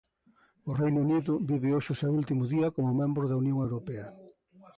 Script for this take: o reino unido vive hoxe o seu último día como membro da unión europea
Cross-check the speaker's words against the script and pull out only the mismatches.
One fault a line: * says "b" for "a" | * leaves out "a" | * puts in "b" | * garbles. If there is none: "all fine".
all fine